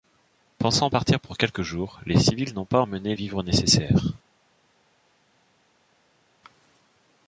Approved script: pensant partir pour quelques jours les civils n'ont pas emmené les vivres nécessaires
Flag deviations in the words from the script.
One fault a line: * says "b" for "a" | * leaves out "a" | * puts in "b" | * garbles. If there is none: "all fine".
* leaves out "les"